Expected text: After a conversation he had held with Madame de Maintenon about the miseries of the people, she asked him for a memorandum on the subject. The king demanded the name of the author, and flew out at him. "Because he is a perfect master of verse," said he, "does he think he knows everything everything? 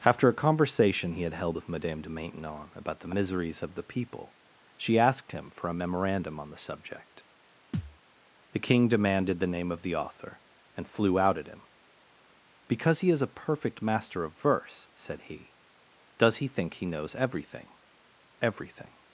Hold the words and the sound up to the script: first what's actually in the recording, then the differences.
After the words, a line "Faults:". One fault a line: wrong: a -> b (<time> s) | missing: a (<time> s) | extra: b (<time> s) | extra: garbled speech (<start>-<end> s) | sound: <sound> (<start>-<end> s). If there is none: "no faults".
After a conversation he had held with Madame de Maintenon about the miseries of the people, she asked him for a memorandum on the subject. The king demanded the name of the author, and flew out at him. "Because he is a perfect master of verse," said he, "does he think he knows everything everything?
Faults:
sound: thud (7.7-8.0 s)